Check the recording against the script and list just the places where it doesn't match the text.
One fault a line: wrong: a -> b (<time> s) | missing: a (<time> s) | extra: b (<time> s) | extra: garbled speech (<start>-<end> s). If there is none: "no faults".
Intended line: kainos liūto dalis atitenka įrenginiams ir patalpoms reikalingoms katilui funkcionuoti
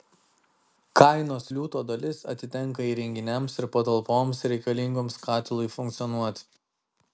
no faults